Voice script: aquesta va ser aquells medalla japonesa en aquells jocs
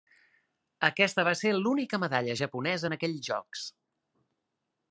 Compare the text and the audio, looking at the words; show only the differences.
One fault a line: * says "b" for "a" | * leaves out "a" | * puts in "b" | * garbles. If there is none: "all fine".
* says "l'única" for "aquells"